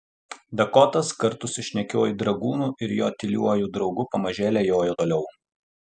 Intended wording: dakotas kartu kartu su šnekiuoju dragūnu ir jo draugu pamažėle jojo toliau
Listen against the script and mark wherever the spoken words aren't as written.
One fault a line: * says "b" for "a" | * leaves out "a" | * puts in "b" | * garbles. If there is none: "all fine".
* leaves out "kartu"
* puts in "tyliuoju"